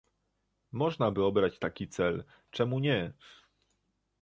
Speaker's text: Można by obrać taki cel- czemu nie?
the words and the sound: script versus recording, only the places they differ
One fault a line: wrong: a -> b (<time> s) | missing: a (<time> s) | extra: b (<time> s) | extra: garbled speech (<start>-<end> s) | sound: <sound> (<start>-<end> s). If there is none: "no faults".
no faults